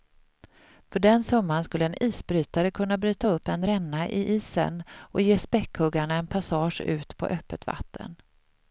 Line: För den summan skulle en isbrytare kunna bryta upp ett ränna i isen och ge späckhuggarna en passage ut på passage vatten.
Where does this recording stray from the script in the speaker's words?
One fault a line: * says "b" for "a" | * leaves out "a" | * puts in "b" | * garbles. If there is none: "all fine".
* says "en" for "ett"
* says "öppet" for "passage"